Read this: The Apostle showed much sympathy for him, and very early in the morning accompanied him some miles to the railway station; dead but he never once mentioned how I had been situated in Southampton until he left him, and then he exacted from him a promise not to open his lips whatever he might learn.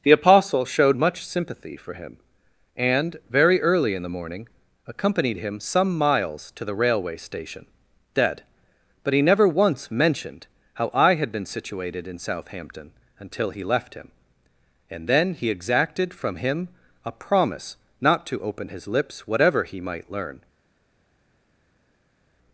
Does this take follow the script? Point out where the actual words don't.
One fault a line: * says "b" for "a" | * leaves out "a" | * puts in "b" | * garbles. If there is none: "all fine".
all fine